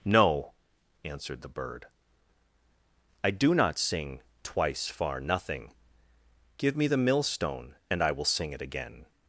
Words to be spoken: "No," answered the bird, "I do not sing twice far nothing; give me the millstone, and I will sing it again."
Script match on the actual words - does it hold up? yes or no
yes